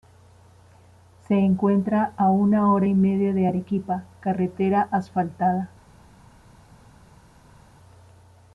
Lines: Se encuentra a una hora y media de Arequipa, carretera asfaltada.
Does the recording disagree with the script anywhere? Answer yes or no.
no